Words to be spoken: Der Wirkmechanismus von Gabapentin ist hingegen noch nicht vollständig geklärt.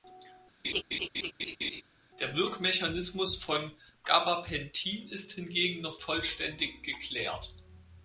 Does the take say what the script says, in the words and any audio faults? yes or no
no